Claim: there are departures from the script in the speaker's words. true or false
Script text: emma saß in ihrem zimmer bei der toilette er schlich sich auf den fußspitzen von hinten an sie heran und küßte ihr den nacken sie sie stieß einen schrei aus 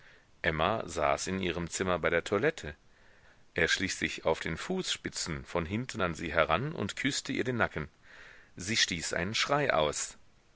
true